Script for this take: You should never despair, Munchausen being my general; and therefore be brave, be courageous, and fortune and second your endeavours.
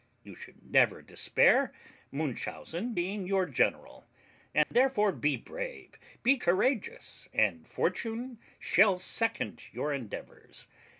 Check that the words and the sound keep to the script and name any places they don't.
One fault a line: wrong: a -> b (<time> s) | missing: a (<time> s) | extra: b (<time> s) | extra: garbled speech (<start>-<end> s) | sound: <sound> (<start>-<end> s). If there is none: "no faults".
wrong: my -> your (3.2 s)
sound: dropout (4.6-4.7 s)
wrong: and -> shall (8.6 s)